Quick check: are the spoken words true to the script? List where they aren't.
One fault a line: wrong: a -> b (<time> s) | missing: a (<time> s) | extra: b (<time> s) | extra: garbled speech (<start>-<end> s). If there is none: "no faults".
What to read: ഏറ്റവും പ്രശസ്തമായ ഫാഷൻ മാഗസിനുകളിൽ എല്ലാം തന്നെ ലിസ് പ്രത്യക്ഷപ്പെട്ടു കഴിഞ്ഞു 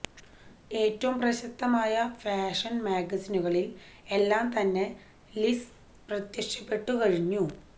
no faults